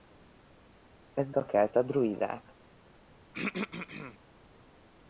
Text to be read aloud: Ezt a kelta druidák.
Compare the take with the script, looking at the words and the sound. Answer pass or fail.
fail